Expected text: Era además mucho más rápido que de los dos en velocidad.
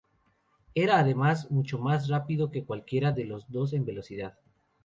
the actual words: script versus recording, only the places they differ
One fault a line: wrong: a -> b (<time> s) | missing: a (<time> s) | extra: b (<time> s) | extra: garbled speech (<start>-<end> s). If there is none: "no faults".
extra: cualquiera (2.6 s)